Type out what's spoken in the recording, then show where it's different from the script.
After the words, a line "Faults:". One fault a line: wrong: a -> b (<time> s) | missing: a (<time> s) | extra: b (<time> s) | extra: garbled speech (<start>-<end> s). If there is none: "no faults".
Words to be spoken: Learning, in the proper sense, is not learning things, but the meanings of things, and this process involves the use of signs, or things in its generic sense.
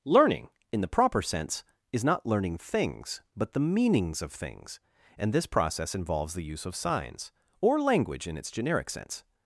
Learning, in the proper sense, is not learning things, but the meanings of things, and this process involves the use of signs, or language in its generic sense.
Faults:
wrong: things -> language (7.8 s)